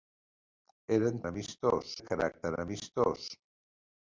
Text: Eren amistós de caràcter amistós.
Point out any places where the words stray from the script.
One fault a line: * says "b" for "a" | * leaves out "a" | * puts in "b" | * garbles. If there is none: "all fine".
all fine